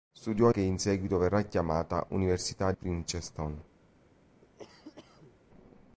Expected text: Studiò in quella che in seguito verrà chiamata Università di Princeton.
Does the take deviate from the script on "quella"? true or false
true